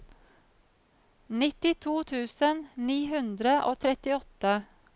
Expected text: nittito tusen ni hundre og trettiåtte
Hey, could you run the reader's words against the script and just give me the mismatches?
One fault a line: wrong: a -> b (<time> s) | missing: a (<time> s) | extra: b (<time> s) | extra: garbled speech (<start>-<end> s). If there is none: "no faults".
no faults